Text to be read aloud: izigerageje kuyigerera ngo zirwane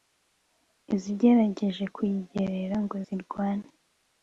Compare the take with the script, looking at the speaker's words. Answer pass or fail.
pass